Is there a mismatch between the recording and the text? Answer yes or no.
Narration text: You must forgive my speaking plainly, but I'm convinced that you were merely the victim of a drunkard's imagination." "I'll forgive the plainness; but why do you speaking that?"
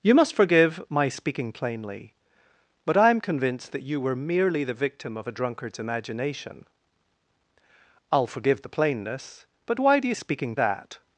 no